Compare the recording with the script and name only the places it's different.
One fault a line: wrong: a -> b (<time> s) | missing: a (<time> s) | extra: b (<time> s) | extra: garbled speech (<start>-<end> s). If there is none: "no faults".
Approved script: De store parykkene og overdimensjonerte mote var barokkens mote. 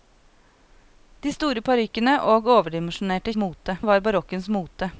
no faults